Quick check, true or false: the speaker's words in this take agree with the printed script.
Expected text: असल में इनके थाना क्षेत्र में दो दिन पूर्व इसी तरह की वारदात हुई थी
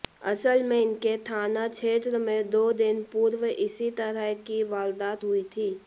true